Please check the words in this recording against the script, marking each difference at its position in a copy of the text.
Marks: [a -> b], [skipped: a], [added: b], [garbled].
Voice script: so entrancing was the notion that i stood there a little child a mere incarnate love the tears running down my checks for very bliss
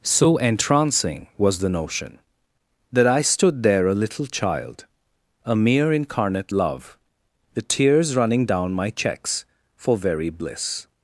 so entrancing was the notion that i stood there a little child a mere incarnate love the tears running down my checks for very bliss